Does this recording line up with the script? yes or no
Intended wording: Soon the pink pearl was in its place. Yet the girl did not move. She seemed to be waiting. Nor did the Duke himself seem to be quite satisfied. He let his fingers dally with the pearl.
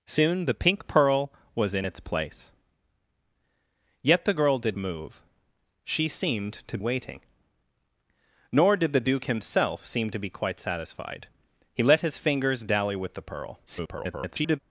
no